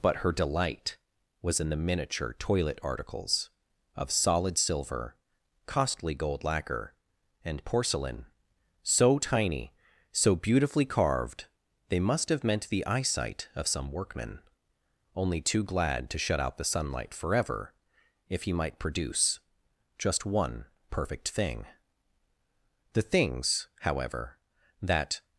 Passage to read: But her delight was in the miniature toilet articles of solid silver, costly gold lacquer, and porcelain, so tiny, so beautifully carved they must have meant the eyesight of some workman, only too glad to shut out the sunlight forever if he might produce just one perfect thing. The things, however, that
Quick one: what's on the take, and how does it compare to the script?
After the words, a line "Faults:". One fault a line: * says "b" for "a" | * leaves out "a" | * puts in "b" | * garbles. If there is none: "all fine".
But her delight was in the miniature toilet articles of solid silver, costly gold lacquer, and porcelain, so tiny, so beautifully carved they must have meant the eyesight of some workman, only too glad to shut out the sunlight forever if he might produce just one perfect thing. The things, however, that
Faults:
all fine